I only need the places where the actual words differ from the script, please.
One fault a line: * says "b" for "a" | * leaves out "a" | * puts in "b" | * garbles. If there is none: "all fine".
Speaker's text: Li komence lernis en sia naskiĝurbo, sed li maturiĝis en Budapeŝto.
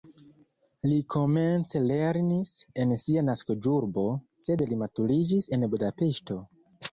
all fine